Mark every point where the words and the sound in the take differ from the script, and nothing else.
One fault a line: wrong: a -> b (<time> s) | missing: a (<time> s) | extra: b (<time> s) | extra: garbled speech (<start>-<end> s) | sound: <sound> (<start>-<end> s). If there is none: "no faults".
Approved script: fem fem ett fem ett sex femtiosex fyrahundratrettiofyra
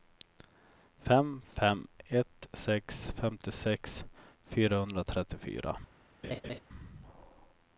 missing: fem ett (2.5 s)
sound: laugh (6.2-6.6 s)